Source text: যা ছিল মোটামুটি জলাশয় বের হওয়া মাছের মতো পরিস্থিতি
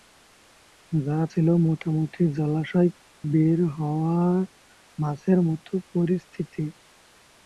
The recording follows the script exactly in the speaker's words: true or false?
true